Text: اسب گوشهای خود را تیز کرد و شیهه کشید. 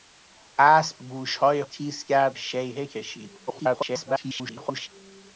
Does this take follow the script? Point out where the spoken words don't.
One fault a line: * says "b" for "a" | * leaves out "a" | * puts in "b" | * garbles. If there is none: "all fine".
* leaves out "خود را"
* leaves out "و"
* garbles